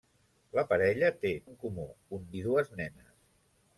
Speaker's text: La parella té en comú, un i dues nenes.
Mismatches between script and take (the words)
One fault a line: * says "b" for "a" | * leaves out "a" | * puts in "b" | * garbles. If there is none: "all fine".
all fine